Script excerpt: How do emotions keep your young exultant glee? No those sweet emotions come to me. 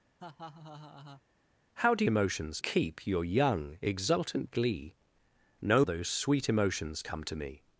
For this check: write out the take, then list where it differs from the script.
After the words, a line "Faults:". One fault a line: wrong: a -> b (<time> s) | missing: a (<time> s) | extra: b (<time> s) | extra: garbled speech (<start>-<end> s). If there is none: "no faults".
How do emotions keep your young exultant glee? No those sweet emotions come to me.
Faults:
no faults